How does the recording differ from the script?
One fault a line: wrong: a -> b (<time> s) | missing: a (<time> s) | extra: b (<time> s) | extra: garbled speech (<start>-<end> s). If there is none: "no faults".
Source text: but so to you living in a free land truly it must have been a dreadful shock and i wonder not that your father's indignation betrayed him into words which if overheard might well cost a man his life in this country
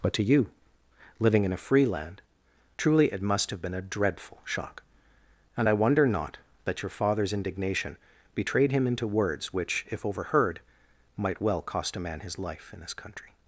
missing: so (0.1 s)